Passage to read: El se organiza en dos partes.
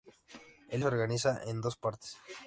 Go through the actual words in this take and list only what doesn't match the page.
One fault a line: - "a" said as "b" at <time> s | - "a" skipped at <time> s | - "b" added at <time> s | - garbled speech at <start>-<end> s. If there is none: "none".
none